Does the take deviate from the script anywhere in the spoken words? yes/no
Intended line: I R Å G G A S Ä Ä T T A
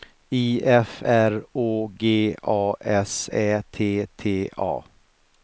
yes